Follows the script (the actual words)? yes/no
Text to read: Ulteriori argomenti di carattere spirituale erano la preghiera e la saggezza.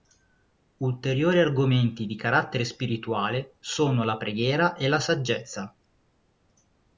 no